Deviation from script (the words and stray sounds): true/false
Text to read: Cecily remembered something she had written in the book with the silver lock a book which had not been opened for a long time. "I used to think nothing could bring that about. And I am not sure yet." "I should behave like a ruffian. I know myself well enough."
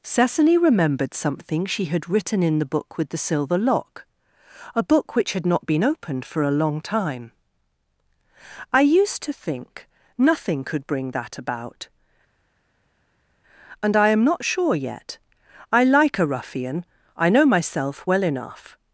true